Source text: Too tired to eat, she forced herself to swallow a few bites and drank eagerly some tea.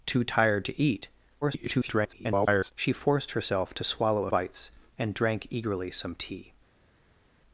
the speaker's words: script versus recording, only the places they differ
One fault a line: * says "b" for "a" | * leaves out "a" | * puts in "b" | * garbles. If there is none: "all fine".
* garbles
* leaves out "few"